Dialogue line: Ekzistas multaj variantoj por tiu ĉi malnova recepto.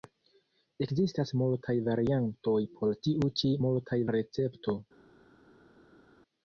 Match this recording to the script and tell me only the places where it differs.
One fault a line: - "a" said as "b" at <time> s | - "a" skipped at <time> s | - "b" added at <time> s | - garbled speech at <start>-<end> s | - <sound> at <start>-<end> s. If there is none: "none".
- "malnova" said as "multaj" at 3.6 s